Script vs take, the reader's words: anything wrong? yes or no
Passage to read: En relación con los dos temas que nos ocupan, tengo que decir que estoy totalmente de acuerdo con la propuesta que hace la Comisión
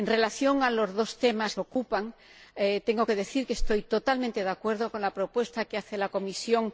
yes